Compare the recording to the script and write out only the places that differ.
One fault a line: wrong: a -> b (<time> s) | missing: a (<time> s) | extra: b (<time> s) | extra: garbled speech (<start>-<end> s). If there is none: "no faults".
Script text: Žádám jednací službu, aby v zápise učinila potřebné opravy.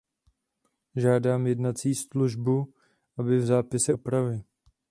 missing: učinila potřebné (3.9 s)